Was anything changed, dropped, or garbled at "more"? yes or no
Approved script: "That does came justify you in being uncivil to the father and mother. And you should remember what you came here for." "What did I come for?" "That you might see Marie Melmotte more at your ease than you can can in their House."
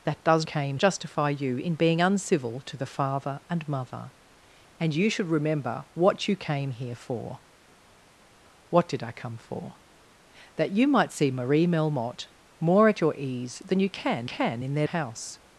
no